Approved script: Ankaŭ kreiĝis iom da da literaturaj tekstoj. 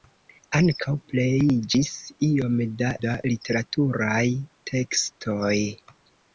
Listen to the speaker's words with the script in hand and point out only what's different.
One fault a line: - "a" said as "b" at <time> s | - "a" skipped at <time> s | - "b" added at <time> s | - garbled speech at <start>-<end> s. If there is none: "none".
none